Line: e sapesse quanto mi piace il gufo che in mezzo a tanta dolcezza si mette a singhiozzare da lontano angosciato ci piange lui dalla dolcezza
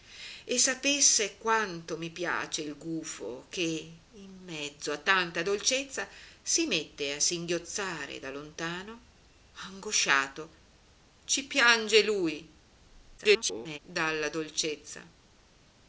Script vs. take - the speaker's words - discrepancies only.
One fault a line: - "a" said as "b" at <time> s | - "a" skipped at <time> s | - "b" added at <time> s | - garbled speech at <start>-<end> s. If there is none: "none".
- garbled speech at 13.2-13.8 s